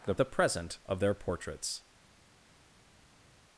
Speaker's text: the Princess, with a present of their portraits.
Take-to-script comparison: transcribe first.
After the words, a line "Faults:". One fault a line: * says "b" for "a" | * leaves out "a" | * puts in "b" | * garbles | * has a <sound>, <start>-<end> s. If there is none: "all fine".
the A present of their portraits.
Faults:
* leaves out "Princess with"